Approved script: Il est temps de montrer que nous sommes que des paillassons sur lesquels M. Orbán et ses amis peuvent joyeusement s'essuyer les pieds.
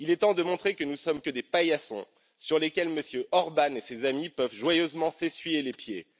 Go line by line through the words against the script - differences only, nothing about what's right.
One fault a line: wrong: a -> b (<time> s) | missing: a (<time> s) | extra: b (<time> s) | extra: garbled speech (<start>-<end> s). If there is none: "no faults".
no faults